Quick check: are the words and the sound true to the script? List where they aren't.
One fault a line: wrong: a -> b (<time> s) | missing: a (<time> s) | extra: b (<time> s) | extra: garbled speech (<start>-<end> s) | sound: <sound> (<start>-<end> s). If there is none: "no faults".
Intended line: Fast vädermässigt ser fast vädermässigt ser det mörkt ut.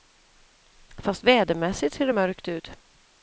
missing: fast vädermässigt ser (2.1 s)